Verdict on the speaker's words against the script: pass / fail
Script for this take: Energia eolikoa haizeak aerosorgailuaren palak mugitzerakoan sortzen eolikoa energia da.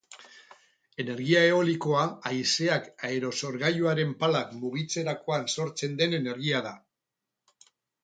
fail